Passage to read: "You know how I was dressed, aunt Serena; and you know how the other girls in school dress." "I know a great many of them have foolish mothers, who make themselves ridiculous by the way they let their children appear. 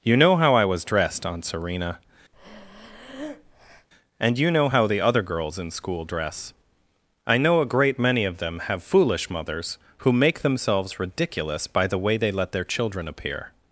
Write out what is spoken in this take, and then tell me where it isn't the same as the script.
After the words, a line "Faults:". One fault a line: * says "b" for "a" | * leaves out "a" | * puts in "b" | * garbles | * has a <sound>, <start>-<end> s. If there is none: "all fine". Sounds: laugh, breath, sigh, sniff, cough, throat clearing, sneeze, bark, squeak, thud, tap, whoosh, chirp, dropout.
"You know how I was dressed, aunt Serena; and you know how the other girls in school dress." "I know a great many of them have foolish mothers, who make themselves ridiculous by the way they let their children appear.
Faults:
* has a breath, 2.3-3.9 s